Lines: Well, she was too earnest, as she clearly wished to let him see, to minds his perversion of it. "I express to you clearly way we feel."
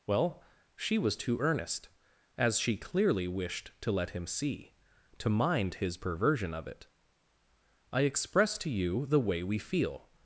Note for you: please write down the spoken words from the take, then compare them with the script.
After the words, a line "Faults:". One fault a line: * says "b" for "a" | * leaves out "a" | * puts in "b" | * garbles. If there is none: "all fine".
Well, she was too earnest, as she clearly wished to let him see, to mind his perversion of it. "I express to you the way we feel."
Faults:
* says "mind" for "minds"
* says "the" for "clearly"